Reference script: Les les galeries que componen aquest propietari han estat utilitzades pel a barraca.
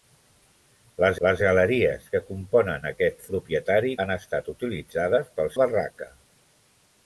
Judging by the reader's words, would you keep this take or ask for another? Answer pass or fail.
pass